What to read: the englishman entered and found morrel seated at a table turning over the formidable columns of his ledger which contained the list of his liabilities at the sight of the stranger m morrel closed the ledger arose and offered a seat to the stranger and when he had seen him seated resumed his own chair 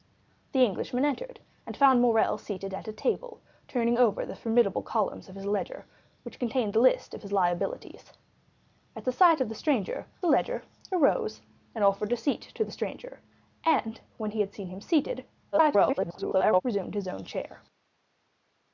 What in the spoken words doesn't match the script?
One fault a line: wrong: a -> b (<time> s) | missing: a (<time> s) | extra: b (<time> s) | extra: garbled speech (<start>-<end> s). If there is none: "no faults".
missing: m morrel closed (10.1 s)
extra: garbled speech (15.5-16.6 s)